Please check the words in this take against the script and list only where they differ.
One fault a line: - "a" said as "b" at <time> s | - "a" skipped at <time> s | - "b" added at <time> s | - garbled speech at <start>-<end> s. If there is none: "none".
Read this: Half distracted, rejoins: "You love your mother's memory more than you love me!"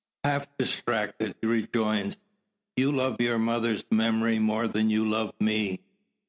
none